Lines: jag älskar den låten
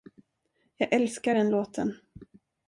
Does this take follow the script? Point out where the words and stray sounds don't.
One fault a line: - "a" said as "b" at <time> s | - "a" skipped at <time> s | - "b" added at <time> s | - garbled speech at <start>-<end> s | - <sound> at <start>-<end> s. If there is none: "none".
none